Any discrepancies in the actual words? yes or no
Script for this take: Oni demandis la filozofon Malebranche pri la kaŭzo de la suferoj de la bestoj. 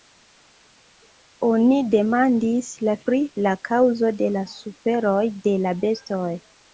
yes